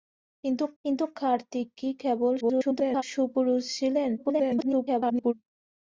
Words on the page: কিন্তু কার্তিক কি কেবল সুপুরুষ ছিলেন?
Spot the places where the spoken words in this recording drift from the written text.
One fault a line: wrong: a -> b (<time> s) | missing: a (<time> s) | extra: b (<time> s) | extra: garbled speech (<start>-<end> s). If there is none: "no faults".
extra: কিন্তু (0.8 s)
extra: garbled speech (2.4-3.0 s)
extra: garbled speech (4.2-5.3 s)